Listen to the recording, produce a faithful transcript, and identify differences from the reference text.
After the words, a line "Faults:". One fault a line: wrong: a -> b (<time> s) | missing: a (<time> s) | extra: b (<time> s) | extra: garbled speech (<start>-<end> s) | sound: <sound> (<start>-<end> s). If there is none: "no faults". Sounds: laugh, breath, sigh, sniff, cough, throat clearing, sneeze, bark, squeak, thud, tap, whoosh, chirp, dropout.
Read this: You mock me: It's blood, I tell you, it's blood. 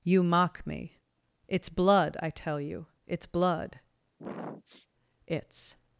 You mock me: It's blood, I tell you, it's blood. It's
Faults:
sound: sniff (4.2-4.9 s)
extra: It's (5.3 s)